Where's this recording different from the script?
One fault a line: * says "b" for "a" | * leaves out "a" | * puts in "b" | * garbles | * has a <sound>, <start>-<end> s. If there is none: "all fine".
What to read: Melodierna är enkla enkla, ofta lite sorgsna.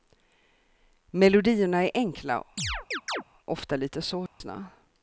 * leaves out "enkla"
* has a chirp, 2.6-3.2 s
* has a dropout, 4.3-4.4 s